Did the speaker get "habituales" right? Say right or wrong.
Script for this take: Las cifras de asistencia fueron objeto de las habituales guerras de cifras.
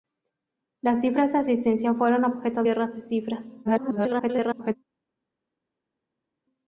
wrong